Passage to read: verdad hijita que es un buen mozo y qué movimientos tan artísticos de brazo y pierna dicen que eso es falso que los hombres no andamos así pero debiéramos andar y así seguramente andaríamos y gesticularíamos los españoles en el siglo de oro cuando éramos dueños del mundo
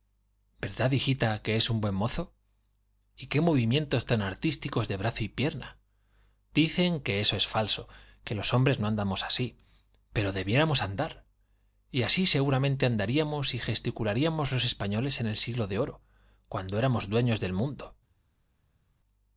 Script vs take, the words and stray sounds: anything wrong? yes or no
no